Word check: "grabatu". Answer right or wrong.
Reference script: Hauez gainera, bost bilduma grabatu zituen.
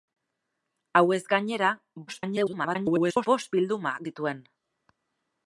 wrong